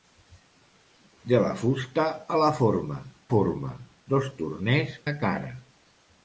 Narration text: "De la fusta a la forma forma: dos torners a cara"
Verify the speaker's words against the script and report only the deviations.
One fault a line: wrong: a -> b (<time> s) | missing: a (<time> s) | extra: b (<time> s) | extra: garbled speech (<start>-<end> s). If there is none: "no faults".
no faults